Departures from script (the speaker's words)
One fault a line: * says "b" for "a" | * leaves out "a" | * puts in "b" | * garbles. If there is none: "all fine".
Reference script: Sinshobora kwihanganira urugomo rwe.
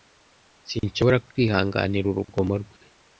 all fine